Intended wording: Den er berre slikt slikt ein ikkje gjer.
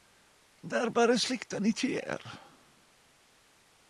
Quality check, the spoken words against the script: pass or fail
fail